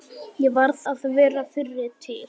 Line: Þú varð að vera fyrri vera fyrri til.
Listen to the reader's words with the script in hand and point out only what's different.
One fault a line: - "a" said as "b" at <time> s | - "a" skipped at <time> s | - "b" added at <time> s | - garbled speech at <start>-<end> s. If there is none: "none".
- "Þú" said as "Ég" at 0.5 s
- "vera fyrri" skipped at 1.9 s